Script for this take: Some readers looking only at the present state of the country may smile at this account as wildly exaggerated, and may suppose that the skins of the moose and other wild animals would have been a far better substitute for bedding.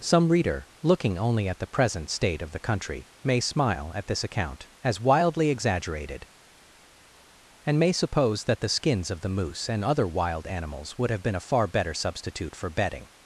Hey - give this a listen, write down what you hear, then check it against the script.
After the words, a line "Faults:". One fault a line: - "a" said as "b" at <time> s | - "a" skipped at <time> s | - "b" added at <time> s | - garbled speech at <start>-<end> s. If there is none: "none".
Some reader looking only at the present state of the country may smile at this account as wildly exaggerated, and may suppose that the skins of the moose and other wild animals would have been a far better substitute for bedding.
Faults:
- "readers" said as "reader" at 0.3 s